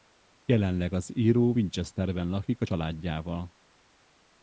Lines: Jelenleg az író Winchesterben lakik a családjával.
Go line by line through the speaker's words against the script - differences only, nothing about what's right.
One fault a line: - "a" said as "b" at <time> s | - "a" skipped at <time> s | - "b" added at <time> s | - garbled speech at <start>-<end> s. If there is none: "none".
none